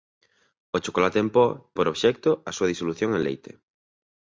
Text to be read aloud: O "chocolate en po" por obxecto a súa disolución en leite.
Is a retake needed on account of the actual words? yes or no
no